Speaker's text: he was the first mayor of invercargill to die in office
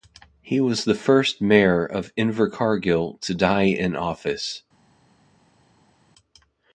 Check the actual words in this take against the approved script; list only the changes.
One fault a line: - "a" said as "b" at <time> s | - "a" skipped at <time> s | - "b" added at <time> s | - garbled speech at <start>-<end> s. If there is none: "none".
none